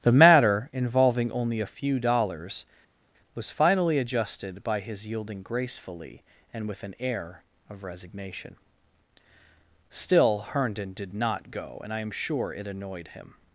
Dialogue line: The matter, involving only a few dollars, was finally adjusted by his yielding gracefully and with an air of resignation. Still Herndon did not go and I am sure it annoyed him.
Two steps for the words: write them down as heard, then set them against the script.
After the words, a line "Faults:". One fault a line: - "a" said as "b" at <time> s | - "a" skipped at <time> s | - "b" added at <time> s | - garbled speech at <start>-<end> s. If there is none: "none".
The matter, involving only a few dollars, was finally adjusted by his yielding gracefully and with an air of resignation. Still Herndon did not go and I am sure it annoyed him.
Faults:
none